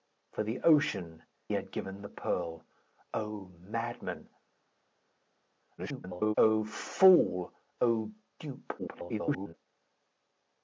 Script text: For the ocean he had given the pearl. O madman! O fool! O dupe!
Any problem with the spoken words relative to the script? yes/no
yes